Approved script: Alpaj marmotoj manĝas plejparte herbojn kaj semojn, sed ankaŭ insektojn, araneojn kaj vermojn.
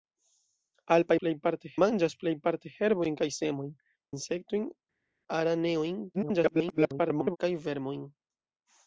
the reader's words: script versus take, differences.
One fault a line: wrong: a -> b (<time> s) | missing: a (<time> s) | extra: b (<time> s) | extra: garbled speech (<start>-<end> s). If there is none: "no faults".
wrong: marmotoj -> plejparte (1.2 s)
missing: sed ankaŭ (3.7 s)
extra: garbled speech (6.1-7.4 s)